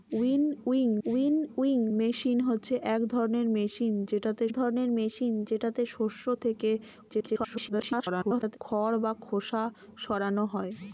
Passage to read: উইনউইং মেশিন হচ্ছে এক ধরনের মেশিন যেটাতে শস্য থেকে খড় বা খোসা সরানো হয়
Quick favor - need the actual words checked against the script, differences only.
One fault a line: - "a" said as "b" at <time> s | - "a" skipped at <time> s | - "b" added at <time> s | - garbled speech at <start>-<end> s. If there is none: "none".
- "উইনউইং" added at 1.1 s
- "ধরনের মেশিন যেটাতে" added at 4.5 s
- garbled speech at 7.1-8.6 s